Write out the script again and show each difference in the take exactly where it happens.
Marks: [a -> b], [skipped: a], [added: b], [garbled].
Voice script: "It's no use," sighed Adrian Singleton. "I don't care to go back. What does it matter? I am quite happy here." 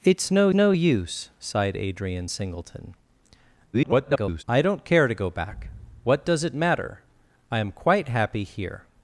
"It's no [added: no] use," sighed Adrian Singleton. [garbled] "I don't care to go back. What does it matter? I am quite happy here."